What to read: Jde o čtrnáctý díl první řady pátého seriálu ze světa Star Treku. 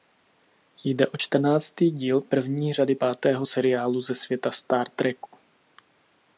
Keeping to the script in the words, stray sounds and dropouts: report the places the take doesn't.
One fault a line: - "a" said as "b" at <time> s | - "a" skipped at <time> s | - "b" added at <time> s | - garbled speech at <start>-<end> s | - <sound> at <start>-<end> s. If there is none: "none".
- dropout at 5.3-5.3 s